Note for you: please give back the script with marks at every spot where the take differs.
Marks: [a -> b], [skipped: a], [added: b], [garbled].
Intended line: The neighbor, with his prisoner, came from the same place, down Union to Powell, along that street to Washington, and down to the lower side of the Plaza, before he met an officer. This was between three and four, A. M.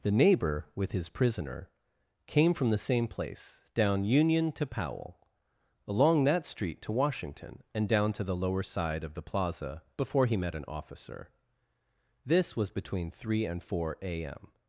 The neighbor, with his prisoner, came from the same place, down Union to Powell, along that street to Washington, and down to the lower side of the Plaza, before he met an officer. This was between three and four, A. M.